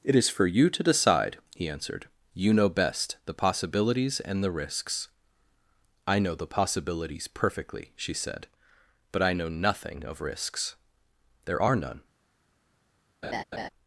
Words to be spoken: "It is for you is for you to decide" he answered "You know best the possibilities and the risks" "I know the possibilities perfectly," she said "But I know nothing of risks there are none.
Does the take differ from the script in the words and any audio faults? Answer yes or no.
yes